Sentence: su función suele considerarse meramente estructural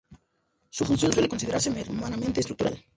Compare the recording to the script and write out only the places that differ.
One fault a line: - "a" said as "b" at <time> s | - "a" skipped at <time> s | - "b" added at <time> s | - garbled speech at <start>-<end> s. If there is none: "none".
none